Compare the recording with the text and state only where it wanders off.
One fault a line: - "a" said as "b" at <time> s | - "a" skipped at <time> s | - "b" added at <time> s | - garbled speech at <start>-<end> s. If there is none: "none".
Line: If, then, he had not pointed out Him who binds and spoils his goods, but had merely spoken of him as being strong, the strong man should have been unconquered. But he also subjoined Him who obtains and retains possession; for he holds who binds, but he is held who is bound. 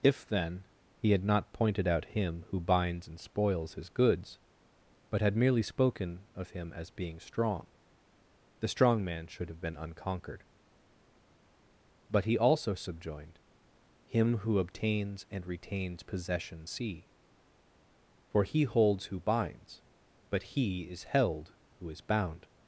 - "see" added at 16.6 s